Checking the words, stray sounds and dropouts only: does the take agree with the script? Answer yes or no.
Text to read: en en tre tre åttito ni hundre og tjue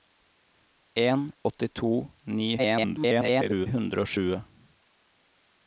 no